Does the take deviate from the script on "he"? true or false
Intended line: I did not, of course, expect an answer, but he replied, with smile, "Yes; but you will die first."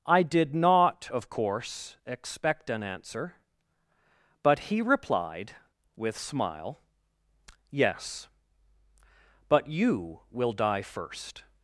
false